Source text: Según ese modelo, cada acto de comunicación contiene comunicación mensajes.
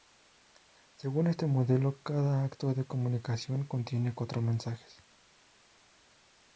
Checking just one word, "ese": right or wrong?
wrong